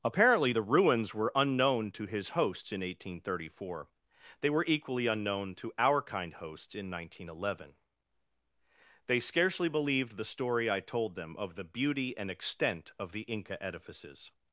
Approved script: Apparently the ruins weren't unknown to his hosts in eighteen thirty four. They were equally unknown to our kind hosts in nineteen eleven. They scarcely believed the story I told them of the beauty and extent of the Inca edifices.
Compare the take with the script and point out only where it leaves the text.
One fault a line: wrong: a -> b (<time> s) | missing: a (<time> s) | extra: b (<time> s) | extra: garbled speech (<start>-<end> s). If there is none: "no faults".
wrong: weren't -> were (1.1 s)